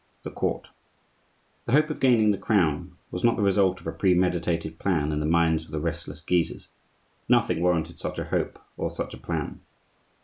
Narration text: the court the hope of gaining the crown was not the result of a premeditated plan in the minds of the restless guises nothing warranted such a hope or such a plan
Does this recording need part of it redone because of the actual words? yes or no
no